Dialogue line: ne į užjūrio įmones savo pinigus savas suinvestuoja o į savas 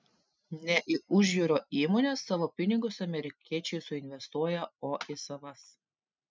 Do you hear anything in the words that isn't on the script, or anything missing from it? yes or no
yes